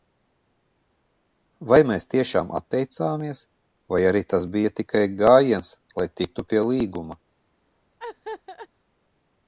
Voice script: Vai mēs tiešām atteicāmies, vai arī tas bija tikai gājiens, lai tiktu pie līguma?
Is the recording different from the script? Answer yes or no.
no